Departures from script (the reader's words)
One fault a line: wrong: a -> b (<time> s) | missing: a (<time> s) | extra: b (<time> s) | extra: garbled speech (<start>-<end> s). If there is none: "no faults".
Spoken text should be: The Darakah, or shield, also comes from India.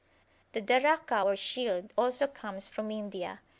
no faults